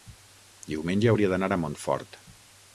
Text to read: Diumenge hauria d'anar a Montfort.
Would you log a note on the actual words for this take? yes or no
no